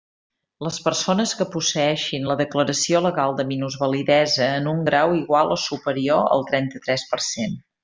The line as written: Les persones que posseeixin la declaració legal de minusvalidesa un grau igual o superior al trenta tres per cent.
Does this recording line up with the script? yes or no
no